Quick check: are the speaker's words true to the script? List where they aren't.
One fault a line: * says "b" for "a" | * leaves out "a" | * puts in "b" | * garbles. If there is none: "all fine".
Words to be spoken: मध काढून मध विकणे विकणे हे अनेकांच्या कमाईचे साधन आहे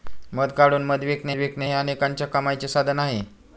all fine